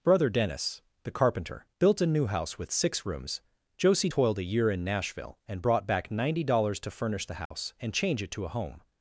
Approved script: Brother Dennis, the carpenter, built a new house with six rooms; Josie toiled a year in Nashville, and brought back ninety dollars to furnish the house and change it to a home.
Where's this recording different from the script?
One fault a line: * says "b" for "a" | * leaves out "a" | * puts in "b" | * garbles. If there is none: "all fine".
all fine